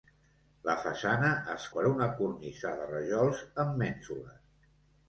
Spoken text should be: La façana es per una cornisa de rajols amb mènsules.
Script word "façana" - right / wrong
right